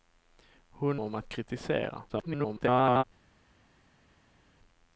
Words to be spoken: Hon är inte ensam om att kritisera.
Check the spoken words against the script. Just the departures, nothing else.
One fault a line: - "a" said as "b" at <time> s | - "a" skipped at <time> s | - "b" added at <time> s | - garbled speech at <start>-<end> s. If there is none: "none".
- "är inte ensam" skipped at 1.0 s
- garbled speech at 2.1-3.0 s